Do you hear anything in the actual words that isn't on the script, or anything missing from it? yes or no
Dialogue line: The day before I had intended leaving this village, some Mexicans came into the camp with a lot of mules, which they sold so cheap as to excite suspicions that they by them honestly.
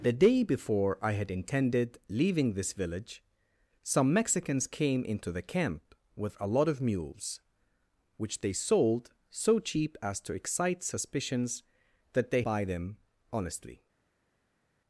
no